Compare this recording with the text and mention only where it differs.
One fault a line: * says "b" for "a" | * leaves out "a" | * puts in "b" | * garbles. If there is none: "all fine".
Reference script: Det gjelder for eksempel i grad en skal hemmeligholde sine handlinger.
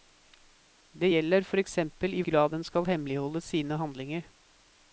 all fine